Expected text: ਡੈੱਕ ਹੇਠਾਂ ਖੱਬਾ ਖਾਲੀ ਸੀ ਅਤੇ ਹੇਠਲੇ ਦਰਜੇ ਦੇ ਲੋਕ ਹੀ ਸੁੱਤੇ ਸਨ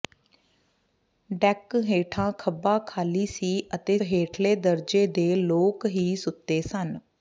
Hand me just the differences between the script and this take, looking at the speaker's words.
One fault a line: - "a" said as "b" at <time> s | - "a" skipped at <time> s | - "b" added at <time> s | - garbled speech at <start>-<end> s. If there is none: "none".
none